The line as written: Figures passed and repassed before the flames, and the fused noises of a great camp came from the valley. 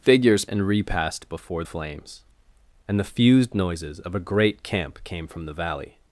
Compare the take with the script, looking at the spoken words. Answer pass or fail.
fail